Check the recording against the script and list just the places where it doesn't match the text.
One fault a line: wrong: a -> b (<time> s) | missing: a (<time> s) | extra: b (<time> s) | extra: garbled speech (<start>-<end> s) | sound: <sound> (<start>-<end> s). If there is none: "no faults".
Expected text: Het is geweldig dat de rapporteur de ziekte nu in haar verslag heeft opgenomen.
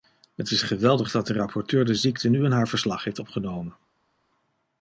no faults